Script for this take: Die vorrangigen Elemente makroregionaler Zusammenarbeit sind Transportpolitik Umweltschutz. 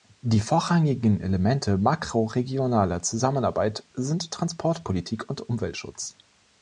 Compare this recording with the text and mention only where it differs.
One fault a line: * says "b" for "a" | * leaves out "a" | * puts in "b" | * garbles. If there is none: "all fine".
* puts in "und"